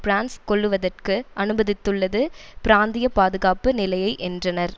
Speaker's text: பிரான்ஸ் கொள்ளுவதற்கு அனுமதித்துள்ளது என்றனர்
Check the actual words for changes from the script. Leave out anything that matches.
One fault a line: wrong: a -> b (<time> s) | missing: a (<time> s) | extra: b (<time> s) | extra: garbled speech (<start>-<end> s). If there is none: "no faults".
extra: பிராந்திய பாதுகாப்பு நிலையை (2.6 s)